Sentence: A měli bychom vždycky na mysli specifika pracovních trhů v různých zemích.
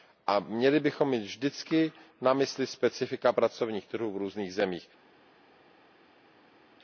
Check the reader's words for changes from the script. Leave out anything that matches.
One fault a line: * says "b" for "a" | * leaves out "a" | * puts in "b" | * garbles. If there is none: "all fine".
* puts in "mít"